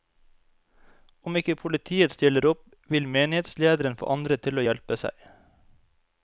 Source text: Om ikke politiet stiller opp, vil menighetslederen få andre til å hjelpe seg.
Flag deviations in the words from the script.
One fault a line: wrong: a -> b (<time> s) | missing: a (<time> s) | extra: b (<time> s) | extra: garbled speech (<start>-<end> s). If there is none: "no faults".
no faults